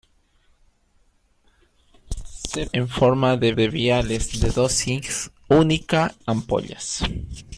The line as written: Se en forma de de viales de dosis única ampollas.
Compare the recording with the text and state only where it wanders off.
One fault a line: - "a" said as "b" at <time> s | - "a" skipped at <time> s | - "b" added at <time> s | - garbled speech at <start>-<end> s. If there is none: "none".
none